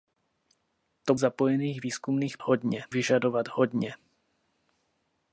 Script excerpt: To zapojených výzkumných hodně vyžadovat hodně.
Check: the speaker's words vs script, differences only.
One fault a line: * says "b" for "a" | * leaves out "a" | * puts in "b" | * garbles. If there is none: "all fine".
all fine